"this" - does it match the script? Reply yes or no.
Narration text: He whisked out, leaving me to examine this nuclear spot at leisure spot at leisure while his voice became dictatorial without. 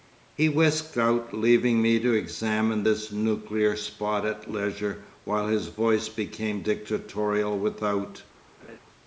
yes